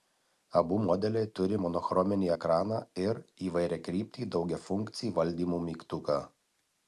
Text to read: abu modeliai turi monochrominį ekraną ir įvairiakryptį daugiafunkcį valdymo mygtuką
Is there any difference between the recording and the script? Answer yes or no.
no